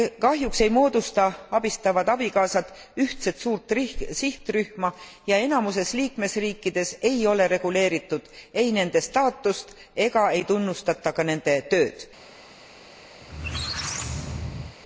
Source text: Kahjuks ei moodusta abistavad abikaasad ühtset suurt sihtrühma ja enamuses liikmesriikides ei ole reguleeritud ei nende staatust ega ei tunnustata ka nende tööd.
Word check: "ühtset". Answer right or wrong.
right